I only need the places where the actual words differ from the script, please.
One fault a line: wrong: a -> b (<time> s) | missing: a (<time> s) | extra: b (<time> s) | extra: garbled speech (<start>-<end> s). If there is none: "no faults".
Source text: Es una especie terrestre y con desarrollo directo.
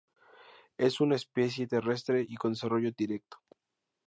no faults